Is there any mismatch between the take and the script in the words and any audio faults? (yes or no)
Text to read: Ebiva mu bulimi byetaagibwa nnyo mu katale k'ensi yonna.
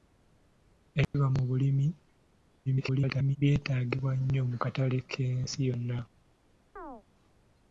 yes